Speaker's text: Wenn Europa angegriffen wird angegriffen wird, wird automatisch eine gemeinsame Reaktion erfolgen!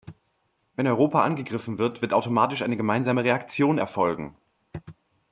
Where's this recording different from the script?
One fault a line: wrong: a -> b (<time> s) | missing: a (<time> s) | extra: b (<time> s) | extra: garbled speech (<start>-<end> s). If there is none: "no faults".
missing: angegriffen wird (2.0 s)